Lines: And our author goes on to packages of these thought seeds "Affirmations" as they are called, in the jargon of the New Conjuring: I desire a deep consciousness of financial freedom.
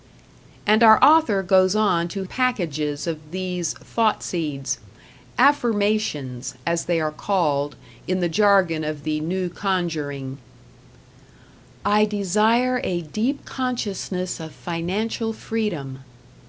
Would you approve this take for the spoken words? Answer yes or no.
yes